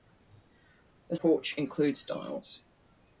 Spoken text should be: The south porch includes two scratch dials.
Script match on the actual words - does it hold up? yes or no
no